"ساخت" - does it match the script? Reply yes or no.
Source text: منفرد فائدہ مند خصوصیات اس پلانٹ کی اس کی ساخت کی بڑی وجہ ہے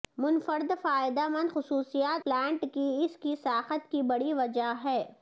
yes